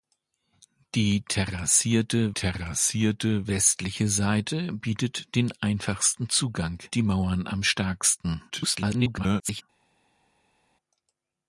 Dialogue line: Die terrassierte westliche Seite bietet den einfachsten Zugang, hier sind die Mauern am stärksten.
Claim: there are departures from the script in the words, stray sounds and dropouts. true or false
true